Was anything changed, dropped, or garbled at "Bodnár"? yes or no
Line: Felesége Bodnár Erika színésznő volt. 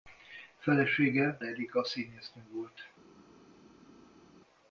yes